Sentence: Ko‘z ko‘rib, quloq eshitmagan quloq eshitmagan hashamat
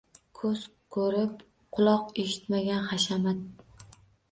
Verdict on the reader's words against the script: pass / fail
fail